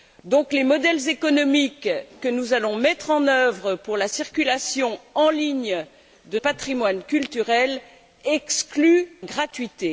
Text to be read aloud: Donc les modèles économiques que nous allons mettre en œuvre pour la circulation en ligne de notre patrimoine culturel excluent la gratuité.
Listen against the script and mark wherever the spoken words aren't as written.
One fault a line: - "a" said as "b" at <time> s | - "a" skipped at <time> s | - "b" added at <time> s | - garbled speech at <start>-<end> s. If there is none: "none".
- "notre" skipped at 6.4 s
- "la" skipped at 9.1 s